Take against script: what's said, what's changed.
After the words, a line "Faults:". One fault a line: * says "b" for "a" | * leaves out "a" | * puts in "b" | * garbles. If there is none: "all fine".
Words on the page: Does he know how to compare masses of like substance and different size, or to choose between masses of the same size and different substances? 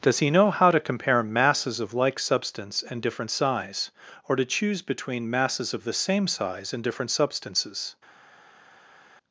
Does he know how to compare masses of like substance and different size, or to choose between masses of the same size and different substances?
Faults:
all fine